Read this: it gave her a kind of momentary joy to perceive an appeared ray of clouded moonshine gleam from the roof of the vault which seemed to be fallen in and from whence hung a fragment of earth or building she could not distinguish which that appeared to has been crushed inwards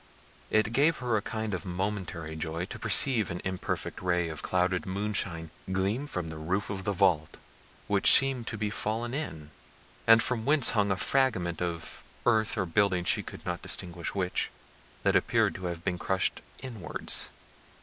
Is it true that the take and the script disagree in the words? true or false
true